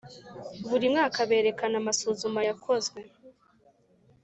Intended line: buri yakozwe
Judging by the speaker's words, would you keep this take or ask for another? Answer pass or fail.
fail